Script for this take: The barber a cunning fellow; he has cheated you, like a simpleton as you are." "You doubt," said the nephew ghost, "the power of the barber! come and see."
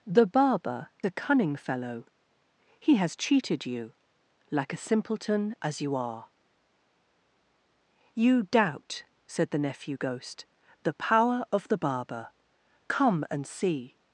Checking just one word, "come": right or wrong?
right